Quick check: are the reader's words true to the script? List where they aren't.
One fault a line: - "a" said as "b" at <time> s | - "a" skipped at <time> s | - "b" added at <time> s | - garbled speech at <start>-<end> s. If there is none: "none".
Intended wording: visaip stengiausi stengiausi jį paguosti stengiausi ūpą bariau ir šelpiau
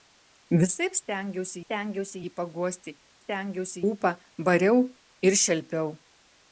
none